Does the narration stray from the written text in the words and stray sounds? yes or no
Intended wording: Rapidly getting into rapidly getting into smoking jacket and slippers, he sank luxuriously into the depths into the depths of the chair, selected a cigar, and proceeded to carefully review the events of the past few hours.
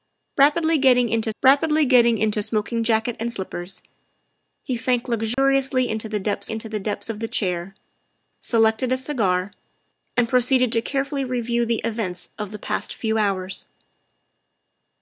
yes